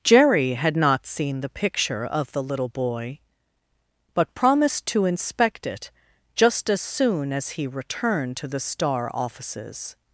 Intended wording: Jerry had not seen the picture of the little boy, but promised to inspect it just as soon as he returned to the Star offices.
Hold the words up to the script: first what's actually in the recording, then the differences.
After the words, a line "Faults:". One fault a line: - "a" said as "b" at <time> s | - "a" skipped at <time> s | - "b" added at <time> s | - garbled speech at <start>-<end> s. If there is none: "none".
Jerry had not seen the picture of the little boy, but promised to inspect it just as soon as he returned to the Star offices.
Faults:
none